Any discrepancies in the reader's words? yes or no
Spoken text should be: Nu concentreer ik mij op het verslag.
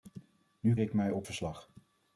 yes